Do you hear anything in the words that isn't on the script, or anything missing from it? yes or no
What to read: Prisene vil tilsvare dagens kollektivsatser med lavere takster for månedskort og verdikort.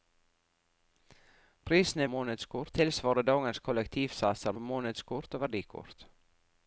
yes